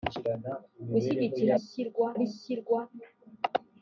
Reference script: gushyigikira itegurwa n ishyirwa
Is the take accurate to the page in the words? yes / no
no